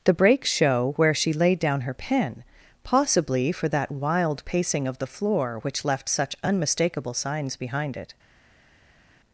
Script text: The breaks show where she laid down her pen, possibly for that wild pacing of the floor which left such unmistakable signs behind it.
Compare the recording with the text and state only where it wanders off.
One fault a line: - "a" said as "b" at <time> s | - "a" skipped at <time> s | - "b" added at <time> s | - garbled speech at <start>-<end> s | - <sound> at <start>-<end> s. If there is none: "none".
none